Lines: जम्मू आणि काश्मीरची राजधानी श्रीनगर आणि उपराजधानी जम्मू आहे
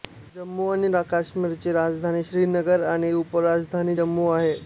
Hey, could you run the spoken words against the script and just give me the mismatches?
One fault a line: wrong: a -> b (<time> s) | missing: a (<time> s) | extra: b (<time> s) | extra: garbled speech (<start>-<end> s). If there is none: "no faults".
no faults